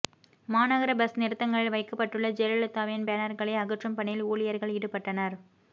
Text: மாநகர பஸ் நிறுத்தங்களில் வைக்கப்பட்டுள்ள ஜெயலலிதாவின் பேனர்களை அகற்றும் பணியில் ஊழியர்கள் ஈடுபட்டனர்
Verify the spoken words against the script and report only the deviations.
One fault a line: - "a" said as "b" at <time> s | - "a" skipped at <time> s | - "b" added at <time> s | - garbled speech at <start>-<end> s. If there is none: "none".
none